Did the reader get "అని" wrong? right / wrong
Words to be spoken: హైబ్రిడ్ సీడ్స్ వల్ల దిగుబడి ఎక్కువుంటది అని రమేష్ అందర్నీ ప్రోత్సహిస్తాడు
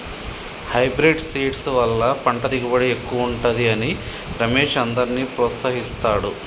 right